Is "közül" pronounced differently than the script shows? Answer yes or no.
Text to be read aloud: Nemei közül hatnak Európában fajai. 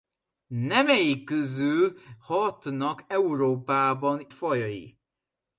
no